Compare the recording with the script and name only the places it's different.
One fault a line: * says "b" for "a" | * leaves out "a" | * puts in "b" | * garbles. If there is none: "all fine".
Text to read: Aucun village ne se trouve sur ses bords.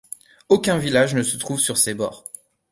all fine